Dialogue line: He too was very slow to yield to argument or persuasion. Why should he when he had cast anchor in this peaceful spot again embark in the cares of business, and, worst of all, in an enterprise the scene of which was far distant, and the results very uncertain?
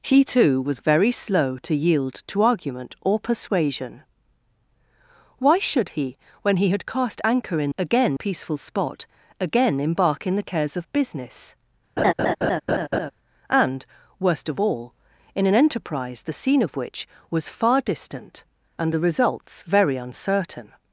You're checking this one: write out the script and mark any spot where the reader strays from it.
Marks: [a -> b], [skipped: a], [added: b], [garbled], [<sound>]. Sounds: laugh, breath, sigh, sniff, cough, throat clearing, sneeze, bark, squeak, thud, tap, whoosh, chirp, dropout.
He too was very slow to yield to argument or persuasion. Why should he when he had cast anchor in [this -> again] peaceful spot again embark in the cares of business, [laugh] and, worst of all, in an enterprise the scene of which was far distant, and the results very uncertain?